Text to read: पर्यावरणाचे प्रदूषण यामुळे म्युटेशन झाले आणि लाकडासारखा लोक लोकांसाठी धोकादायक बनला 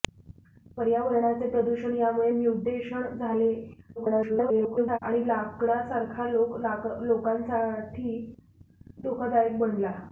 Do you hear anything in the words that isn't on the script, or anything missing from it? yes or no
yes